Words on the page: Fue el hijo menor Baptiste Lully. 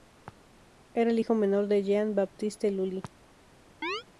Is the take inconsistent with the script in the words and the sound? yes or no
yes